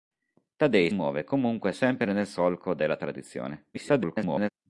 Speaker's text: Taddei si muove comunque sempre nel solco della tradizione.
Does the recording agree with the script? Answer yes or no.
no